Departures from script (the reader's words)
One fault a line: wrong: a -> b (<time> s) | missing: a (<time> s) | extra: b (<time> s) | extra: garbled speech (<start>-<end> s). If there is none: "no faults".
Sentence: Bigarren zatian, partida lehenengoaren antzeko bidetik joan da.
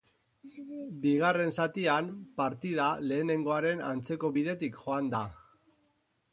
no faults